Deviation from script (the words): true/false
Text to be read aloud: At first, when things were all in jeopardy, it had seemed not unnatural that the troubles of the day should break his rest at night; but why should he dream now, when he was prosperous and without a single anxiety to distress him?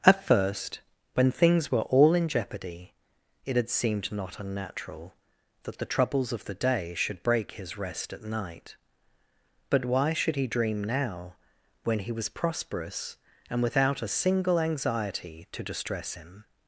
false